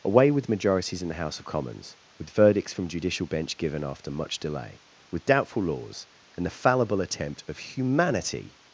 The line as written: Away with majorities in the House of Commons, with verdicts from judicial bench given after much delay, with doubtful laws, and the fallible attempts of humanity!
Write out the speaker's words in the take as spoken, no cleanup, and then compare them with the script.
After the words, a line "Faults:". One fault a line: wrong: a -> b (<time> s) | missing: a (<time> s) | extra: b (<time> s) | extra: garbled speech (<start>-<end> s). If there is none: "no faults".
Away with majorities in the House of Commons, with verdicts from judicial bench given after much delay, with doubtful laws, and the fallible attempt of humanity!
Faults:
wrong: attempts -> attempt (7.0 s)